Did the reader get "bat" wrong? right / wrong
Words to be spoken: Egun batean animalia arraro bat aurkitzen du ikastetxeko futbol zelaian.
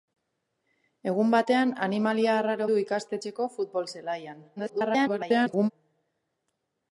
wrong